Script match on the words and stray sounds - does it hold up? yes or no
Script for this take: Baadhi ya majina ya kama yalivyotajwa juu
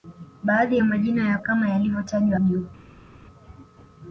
yes